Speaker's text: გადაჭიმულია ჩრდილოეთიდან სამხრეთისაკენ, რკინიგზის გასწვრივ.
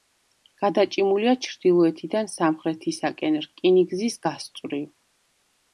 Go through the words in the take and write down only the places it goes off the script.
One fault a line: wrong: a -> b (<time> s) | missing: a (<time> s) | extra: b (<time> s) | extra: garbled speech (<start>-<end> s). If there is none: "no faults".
no faults